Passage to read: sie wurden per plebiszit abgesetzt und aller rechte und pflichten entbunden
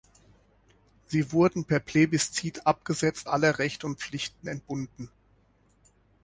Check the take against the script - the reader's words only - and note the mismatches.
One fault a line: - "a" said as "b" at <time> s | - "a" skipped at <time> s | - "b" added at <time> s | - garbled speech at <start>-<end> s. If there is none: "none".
- "und" skipped at 3.3 s